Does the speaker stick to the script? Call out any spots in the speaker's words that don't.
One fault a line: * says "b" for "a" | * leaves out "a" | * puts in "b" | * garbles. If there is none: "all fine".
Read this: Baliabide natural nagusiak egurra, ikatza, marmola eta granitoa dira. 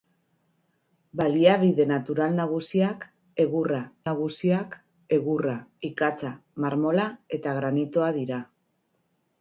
* puts in "nagusiak egurra"